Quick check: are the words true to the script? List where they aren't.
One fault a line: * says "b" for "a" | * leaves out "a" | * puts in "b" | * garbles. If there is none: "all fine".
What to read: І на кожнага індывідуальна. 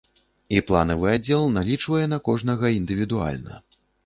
* puts in "планавы аддзел налічвае"